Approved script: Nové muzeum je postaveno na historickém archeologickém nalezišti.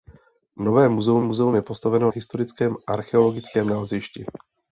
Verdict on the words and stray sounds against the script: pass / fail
fail